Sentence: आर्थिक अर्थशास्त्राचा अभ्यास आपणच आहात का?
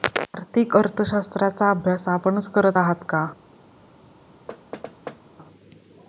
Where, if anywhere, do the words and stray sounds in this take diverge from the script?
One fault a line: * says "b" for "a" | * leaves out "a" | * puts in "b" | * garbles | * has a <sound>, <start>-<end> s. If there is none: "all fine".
* puts in "करत"
* has a thud, 4.5-5.2 s